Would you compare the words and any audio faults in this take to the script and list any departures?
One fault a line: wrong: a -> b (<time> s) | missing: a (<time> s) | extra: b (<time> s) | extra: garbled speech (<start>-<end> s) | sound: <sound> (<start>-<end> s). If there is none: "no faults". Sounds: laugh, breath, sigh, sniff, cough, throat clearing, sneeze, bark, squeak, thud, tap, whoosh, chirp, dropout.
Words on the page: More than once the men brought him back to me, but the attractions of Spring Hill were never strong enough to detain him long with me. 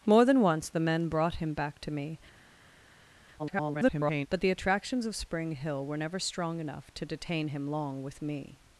extra: garbled speech (3.4-4.3 s)